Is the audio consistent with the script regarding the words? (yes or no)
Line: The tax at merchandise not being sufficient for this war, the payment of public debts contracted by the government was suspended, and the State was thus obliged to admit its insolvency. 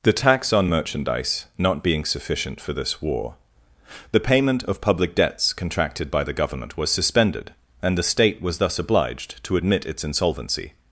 no